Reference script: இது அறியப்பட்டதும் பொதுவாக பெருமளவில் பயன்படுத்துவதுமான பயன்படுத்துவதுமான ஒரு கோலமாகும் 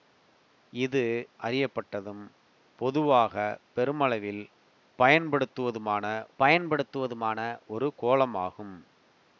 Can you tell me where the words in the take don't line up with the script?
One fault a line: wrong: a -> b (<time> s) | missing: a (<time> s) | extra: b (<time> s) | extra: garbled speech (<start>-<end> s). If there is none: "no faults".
no faults